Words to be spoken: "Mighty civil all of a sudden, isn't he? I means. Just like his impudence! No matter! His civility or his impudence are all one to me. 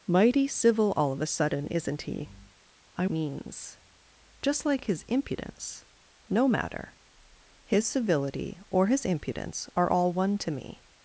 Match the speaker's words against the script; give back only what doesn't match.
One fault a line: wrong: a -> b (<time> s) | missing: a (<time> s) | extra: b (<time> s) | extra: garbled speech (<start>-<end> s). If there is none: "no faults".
no faults